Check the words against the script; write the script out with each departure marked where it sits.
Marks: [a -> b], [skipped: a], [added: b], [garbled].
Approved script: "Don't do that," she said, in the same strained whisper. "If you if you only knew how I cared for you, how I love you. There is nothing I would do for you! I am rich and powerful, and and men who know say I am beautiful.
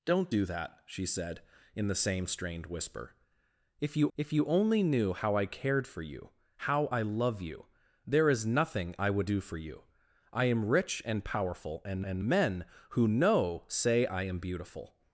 "Don't do that," she said, in the same strained whisper. "If you if you only knew how I cared for you, how I love you. There is nothing I would do for you! I am rich and powerful, and and men who know say I am beautiful.